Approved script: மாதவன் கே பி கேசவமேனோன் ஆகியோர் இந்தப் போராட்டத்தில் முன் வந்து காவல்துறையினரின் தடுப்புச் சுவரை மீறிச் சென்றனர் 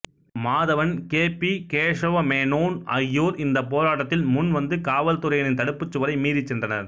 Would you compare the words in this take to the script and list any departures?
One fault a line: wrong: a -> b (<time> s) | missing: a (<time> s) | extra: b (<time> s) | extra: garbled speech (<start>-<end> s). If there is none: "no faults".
no faults